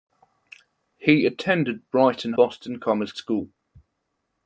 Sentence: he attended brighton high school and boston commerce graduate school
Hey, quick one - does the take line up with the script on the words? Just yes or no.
no